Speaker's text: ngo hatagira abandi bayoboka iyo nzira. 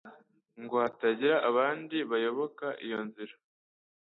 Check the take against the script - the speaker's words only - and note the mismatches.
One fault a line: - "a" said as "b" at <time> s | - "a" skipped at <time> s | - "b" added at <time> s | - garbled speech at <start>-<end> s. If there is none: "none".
none